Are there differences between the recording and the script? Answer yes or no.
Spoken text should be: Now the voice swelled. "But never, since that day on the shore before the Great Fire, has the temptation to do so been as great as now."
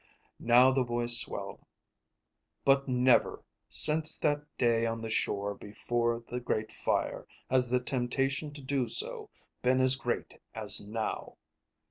no